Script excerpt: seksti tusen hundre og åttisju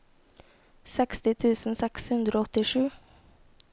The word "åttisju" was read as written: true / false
true